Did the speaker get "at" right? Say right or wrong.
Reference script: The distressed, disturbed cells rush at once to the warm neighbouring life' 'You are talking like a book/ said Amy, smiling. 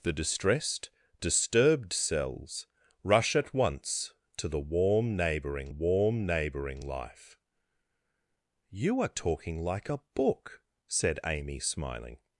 right